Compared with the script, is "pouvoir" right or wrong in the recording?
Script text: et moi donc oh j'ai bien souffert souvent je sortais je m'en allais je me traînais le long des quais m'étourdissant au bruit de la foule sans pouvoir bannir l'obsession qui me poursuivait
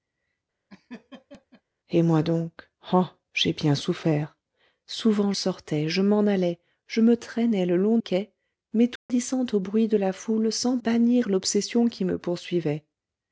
wrong